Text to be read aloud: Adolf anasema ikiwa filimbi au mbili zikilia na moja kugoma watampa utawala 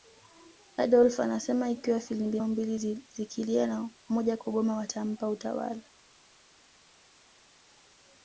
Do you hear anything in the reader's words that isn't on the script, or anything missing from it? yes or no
no